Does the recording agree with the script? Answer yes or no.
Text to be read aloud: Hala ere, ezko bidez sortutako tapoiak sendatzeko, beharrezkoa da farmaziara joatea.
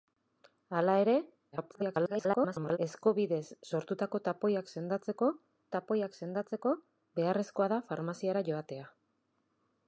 no